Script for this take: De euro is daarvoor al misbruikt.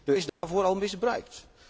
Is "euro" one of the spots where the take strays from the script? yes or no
yes